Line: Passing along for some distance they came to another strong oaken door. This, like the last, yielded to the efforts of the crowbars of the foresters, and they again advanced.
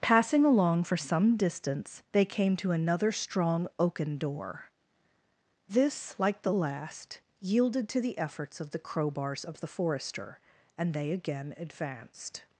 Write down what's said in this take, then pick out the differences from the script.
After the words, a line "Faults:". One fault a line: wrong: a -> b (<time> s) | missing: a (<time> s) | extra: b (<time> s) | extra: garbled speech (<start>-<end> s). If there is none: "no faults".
Passing along for some distance they came to another strong oaken door. This, like the last, yielded to the efforts of the crowbars of the forester, and they again advanced.
Faults:
wrong: foresters -> forester (9.7 s)